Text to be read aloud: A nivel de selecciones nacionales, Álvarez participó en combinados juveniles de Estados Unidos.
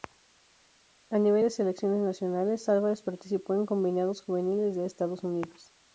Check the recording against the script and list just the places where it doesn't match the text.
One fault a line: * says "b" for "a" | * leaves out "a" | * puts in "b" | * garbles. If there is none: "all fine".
all fine